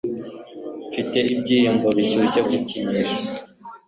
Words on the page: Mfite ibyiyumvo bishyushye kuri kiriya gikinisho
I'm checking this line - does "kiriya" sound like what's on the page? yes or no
no